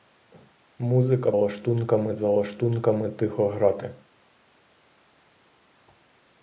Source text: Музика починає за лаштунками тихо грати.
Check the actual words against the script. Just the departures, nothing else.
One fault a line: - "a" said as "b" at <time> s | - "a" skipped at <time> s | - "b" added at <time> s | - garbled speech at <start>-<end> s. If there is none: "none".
- "починає" said as "лаштунками" at 1.3 s